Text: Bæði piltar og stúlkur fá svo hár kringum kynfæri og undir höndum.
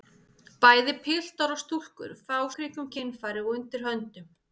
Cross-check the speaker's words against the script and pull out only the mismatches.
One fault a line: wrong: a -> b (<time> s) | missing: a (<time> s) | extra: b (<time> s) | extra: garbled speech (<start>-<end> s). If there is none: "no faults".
missing: svo hár (2.4 s)